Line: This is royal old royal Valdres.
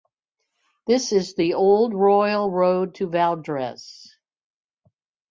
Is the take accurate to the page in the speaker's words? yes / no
no